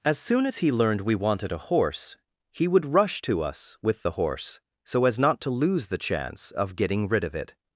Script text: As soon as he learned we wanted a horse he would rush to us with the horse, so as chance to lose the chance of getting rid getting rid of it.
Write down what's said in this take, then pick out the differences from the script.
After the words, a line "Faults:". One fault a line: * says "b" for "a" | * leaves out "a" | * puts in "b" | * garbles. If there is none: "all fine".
As soon as he learned we wanted a horse he would rush to us with the horse, so as not to lose the chance of getting rid of it.
Faults:
* says "not" for "chance"
* leaves out "getting rid"